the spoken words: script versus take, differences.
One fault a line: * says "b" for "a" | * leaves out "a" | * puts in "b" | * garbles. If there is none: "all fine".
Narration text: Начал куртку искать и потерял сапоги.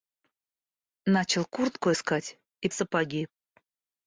* leaves out "потерял"